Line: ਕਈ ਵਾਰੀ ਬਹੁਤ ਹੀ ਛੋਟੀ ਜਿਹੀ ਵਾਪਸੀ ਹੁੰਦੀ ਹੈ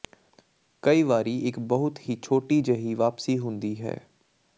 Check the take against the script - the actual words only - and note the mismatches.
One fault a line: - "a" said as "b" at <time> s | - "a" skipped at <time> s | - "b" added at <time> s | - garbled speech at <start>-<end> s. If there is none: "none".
- "ਇੱਕ" added at 1.5 s